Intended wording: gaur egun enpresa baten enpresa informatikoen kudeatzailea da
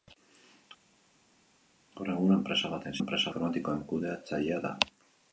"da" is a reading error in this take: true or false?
false